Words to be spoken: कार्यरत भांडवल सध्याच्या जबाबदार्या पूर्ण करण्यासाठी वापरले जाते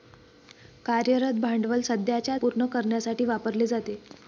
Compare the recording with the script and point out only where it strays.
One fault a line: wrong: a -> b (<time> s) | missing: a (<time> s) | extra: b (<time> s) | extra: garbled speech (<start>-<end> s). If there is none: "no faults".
missing: जबाबदार्या (2.4 s)